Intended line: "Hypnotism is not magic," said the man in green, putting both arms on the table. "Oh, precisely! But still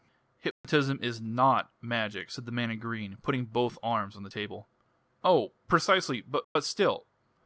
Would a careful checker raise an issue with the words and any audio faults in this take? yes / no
yes